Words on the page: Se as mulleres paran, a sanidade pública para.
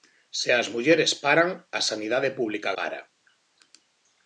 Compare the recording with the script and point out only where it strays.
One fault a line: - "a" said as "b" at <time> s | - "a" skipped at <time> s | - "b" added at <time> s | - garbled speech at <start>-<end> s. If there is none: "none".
none